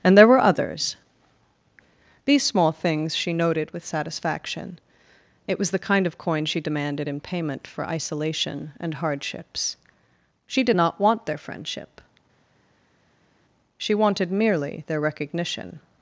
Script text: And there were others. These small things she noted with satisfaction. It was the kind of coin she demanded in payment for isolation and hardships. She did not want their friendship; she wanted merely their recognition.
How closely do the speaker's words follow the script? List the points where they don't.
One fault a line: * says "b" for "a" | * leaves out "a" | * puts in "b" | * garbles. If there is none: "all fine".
all fine